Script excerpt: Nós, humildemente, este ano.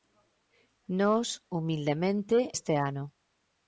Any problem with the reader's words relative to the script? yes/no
no